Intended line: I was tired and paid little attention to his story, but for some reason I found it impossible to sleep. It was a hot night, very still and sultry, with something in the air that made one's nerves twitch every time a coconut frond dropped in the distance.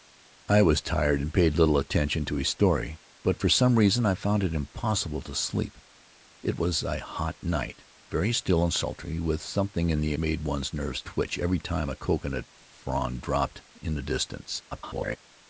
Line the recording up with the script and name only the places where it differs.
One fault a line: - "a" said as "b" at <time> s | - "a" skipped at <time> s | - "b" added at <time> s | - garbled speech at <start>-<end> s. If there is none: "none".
- "air that" skipped at 10.2 s
- garbled speech at 14.7-15.2 s